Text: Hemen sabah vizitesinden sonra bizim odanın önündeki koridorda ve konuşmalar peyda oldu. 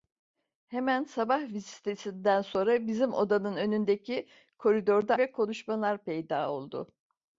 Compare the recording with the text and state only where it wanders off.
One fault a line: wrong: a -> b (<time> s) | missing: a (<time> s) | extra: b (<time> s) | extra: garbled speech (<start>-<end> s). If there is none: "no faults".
no faults